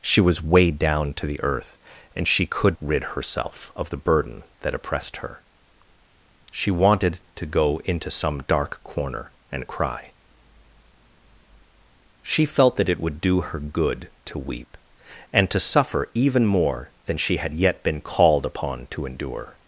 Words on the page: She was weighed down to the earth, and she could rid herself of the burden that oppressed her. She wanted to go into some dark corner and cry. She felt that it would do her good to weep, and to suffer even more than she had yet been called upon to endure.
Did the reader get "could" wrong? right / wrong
right